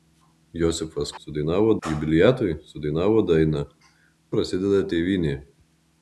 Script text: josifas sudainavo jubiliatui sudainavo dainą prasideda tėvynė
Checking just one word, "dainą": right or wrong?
right